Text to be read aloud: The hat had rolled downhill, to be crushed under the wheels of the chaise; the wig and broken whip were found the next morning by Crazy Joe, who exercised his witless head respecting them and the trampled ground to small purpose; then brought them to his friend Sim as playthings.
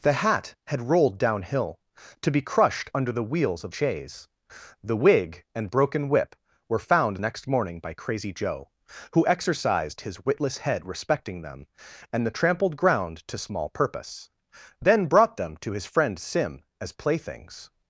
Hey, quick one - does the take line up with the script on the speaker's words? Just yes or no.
no